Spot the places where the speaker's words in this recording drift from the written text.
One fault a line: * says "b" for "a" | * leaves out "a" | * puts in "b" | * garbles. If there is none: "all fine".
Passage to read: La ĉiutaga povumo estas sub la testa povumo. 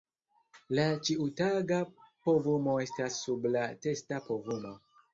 all fine